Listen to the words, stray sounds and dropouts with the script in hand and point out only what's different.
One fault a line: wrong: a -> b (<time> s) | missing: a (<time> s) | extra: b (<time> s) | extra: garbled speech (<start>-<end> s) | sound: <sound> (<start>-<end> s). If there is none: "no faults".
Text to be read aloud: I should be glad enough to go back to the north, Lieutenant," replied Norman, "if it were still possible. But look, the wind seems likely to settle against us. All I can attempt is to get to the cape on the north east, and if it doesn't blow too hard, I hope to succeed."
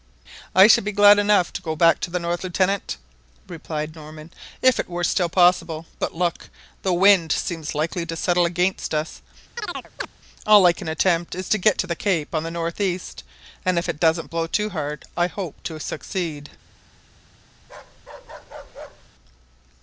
sound: chirp (9.6-10.1 s)
sound: bark (17.6-19.1 s)